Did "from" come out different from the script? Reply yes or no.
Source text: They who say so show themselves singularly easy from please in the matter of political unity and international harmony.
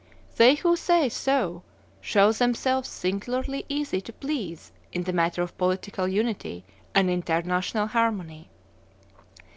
yes